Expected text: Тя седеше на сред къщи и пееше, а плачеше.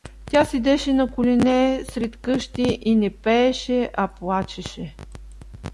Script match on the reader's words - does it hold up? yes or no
no